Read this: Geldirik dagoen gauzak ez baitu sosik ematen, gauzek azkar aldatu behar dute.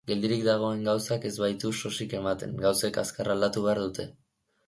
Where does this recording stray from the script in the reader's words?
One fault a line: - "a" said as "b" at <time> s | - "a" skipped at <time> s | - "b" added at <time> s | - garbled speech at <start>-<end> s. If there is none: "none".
none